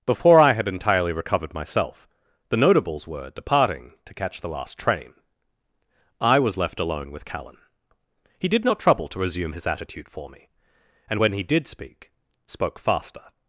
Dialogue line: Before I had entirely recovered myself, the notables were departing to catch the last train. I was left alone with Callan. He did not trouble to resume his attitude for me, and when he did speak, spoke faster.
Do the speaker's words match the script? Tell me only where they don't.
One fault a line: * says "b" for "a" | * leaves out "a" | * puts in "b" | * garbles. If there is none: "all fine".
all fine